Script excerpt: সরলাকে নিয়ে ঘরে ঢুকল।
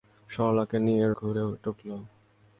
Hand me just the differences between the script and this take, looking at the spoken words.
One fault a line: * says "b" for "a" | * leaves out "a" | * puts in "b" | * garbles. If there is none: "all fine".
all fine